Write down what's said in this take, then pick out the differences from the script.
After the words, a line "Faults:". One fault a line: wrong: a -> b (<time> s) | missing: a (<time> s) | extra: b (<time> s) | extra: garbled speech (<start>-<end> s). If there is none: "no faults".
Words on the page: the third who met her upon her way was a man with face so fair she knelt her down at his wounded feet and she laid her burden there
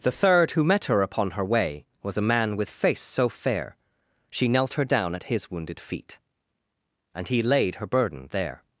the third who met her upon her way was a man with face so fair she knelt her down at his wounded feet and he laid her burden there
Faults:
wrong: she -> he (7.3 s)